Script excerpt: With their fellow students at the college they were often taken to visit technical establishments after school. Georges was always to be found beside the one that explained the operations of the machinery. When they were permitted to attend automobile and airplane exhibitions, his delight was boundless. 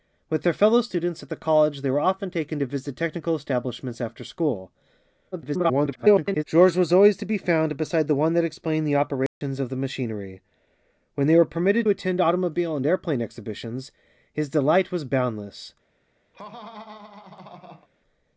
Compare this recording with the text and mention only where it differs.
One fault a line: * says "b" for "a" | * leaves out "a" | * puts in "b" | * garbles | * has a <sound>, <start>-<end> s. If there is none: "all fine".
* garbles
* has a dropout, 9.3-9.4 s
* leaves out "to"
* has a laugh, 16.3-17.9 s